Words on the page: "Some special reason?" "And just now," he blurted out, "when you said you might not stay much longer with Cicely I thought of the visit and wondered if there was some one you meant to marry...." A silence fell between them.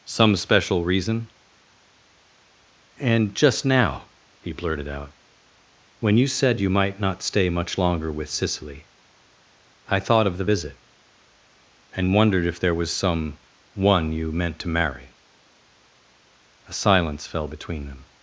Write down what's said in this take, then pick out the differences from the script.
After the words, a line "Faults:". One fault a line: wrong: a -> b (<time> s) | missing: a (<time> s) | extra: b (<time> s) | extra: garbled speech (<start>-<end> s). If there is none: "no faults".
"Some special reason?" "And just now," he blurted out, "when you said you might not stay much longer with Cicely I thought of the visit and wondered if there was some one you meant to marry...." A silence fell between them.
Faults:
no faults